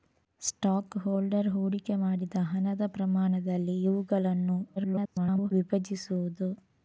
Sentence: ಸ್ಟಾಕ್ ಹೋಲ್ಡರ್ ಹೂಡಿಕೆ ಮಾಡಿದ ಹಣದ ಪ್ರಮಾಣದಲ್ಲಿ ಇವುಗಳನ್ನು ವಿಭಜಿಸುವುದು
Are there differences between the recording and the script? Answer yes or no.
yes